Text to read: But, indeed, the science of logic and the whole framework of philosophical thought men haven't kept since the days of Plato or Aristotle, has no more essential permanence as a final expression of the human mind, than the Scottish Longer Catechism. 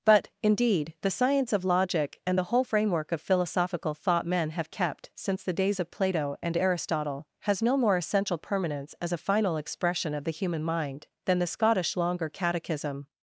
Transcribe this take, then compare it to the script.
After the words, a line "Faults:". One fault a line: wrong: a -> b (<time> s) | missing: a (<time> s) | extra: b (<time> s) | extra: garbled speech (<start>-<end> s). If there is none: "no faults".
But, indeed, the science of logic and the whole framework of philosophical thought men have kept since the days of Plato and Aristotle, has no more essential permanence as a final expression of the human mind, than the Scottish Longer Catechism.
Faults:
wrong: haven't -> have (4.5 s)
wrong: or -> and (6.4 s)